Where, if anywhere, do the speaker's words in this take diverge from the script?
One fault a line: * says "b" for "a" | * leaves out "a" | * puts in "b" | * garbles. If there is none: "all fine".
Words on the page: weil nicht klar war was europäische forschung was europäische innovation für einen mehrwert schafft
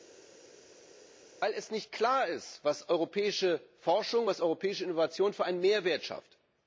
* says "ist" for "war"